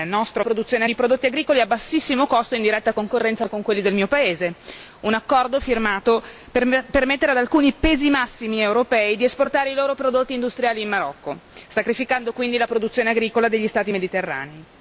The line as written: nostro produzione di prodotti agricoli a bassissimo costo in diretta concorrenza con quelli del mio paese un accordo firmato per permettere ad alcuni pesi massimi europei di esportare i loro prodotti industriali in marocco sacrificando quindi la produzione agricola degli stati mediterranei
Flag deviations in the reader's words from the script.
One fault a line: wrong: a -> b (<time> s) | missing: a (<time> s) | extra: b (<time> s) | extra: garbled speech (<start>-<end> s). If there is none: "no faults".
no faults